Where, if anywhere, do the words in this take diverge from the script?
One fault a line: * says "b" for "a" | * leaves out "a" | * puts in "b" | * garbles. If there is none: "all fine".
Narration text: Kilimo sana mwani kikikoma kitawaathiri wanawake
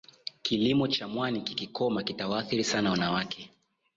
* says "cha" for "sana"
* puts in "sana"